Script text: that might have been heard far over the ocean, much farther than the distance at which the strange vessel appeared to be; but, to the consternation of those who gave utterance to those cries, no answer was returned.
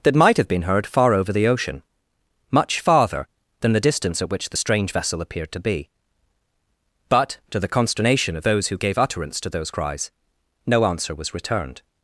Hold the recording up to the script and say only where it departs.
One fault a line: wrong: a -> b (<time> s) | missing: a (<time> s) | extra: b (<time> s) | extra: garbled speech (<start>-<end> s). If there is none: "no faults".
no faults